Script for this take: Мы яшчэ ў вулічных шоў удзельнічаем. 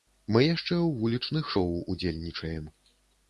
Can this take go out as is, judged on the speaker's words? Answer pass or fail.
pass